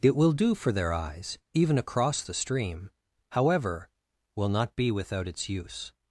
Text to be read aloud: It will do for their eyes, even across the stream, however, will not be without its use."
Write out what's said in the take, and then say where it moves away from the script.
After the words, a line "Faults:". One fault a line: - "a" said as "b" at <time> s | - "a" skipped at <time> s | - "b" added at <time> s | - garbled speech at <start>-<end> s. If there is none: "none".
It will do for their eyes, even across the stream, however, will not be without its use."
Faults:
none